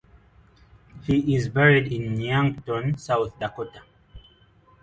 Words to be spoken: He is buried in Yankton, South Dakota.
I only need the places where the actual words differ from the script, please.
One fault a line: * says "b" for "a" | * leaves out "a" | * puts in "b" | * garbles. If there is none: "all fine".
all fine